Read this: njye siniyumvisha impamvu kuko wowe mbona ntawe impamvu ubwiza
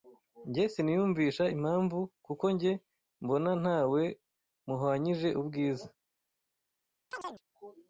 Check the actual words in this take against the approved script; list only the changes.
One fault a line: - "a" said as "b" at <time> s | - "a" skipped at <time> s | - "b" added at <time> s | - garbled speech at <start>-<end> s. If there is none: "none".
- "wowe" said as "njye" at 2.5 s
- "impamvu" said as "muhwanyije" at 4.7 s